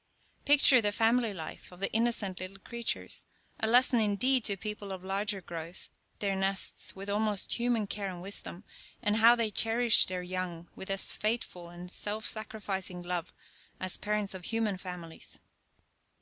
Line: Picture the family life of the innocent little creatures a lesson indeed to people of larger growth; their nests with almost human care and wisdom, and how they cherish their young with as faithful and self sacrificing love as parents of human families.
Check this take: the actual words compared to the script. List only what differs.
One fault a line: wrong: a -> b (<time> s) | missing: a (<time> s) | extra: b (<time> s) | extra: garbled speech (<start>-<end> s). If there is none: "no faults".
no faults